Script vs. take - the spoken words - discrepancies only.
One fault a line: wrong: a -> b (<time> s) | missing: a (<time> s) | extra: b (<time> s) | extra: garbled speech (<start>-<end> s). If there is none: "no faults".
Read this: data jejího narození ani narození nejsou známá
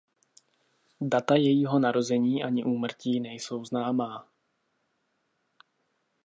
wrong: narození -> úmrtí (2.6 s)